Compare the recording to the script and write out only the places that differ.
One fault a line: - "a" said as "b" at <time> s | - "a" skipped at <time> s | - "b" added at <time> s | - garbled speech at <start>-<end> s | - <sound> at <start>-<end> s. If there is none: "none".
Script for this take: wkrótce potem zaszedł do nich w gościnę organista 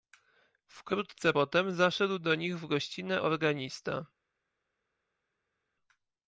none